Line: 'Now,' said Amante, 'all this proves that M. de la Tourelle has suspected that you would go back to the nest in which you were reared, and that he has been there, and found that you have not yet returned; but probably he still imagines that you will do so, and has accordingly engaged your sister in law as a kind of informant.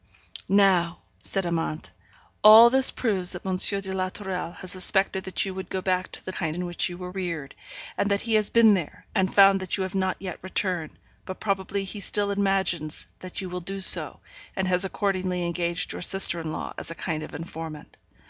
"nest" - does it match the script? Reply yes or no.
no